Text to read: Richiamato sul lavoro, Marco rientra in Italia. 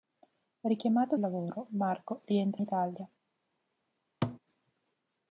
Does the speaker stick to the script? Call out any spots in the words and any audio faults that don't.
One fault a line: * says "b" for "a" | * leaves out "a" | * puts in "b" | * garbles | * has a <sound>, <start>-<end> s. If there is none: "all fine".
* leaves out "sul"
* leaves out "in"
* has a thud, 4.2-4.4 s